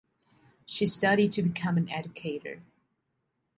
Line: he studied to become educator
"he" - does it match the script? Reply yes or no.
no